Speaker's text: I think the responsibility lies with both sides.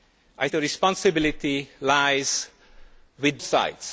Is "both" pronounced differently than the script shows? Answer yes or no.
yes